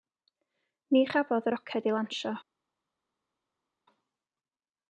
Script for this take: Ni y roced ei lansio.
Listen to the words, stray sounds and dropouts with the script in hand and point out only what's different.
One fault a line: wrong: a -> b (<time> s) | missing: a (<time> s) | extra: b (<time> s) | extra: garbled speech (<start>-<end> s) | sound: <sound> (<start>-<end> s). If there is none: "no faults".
extra: chafodd (1.1 s)